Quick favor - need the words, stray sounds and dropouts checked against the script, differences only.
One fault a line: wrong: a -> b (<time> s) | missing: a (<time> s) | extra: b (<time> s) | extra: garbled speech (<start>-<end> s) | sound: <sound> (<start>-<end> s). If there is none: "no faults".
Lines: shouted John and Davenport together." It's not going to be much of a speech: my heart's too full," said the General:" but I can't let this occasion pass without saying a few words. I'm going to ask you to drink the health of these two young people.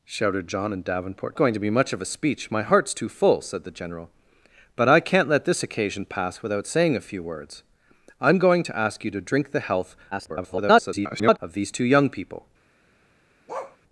missing: together It's not (1.4 s)
extra: garbled speech (10.1-11.4 s)
sound: bark (13.5-13.8 s)